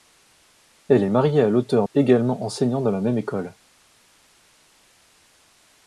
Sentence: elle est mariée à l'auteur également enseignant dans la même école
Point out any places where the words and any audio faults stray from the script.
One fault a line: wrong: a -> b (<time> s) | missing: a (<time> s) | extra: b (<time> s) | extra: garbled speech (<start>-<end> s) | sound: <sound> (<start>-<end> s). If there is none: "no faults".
no faults